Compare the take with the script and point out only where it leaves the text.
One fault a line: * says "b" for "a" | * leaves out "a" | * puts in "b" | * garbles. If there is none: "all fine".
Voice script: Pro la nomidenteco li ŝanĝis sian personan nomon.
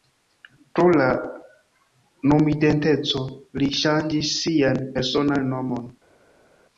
all fine